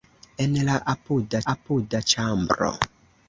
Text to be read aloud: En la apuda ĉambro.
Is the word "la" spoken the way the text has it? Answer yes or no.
yes